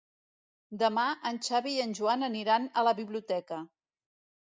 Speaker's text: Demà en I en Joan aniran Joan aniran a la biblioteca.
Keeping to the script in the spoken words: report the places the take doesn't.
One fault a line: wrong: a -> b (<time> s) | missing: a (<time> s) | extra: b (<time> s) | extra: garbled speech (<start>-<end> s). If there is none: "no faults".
extra: Xavi (1.5 s)
missing: Joan aniran (2.7 s)